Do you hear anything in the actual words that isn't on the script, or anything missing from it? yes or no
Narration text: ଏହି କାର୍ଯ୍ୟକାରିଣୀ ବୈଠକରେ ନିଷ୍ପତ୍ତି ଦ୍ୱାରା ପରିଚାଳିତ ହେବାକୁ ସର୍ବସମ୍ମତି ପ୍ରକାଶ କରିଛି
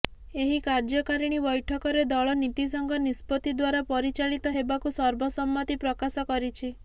yes